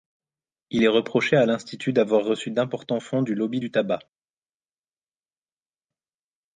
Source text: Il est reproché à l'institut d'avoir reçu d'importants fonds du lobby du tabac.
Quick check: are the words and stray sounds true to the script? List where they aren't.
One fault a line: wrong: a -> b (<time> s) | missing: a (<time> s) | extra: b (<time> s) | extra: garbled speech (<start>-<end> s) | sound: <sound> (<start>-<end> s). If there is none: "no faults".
no faults